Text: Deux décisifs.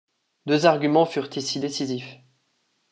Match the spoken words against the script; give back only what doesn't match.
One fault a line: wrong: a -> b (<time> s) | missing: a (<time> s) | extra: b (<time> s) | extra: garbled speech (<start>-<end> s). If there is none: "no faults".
extra: arguments furent ici (0.7 s)